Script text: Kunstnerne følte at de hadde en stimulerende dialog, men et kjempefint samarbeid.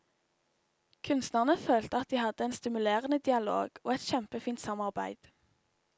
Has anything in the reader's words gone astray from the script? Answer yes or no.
yes